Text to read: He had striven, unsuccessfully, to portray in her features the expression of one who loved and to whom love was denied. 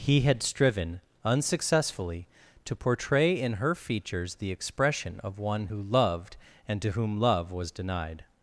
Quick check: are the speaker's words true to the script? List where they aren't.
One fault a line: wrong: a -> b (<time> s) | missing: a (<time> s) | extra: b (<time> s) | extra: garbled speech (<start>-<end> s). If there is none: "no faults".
no faults